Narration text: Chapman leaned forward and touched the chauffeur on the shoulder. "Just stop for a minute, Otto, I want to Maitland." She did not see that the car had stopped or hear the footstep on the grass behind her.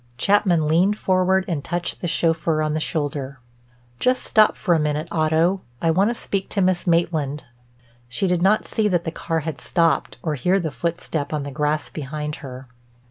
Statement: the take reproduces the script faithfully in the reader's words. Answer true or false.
false